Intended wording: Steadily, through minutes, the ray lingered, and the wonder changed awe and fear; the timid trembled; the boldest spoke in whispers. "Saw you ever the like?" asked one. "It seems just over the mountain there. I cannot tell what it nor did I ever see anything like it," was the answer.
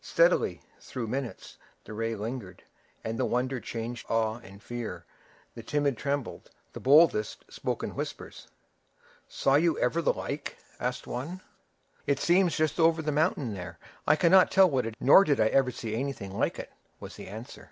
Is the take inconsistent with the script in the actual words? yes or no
no